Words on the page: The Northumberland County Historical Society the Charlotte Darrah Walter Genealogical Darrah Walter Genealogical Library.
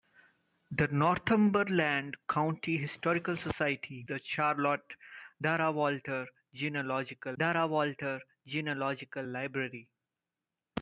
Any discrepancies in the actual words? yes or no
no